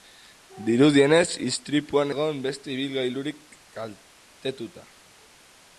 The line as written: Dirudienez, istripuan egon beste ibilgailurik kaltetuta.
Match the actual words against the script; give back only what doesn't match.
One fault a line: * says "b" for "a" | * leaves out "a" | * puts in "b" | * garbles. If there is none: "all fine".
all fine